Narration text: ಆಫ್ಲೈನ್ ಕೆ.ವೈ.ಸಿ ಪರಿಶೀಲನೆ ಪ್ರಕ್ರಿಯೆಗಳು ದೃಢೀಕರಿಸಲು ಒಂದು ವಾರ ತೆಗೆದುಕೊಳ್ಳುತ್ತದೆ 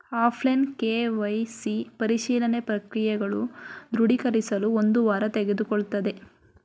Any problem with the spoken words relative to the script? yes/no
no